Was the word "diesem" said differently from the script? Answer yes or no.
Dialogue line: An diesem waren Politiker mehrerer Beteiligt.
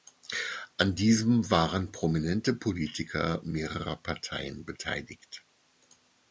no